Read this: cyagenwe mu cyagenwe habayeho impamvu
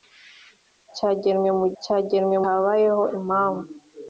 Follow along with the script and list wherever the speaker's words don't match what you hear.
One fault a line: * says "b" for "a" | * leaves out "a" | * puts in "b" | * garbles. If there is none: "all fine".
all fine